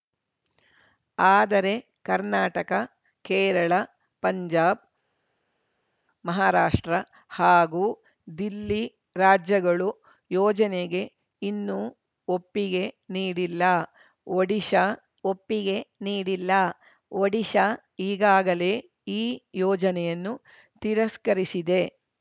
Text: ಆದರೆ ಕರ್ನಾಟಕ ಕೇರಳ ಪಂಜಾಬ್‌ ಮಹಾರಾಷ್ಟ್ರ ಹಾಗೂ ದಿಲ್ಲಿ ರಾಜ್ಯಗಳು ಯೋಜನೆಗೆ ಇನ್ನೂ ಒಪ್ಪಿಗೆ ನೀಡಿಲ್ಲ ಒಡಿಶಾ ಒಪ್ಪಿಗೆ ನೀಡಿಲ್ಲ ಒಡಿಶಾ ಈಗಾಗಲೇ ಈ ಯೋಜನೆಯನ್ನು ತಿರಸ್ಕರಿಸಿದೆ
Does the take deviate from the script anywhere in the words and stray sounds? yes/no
no